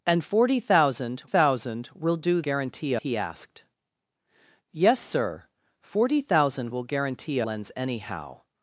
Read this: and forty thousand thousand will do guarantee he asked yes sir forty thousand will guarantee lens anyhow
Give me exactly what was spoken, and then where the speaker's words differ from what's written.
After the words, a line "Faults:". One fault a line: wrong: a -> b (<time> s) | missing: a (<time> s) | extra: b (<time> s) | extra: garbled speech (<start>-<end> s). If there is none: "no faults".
and forty thousand thousand will do guarantee he asked yes sir forty thousand will guarantee lens anyhow
Faults:
no faults